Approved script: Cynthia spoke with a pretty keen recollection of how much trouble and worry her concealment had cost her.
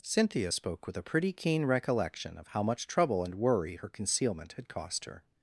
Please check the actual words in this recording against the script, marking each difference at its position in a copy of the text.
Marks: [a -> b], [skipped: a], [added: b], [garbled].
Cynthia spoke with a pretty keen recollection of how much trouble and worry her concealment had cost her.